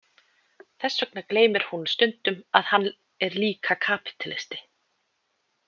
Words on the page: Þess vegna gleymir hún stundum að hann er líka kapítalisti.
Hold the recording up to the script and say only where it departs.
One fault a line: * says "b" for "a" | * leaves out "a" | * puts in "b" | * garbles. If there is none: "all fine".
all fine